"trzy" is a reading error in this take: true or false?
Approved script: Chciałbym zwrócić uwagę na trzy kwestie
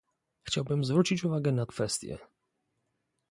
true